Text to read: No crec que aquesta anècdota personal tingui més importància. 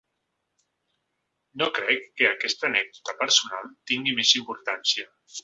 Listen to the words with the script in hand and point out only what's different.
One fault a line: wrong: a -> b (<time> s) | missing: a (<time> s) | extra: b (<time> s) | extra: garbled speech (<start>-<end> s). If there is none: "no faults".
no faults